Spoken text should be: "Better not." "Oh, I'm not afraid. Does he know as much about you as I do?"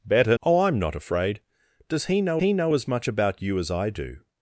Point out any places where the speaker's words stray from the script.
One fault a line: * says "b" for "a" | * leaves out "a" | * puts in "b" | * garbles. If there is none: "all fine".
* leaves out "not"
* puts in "he know"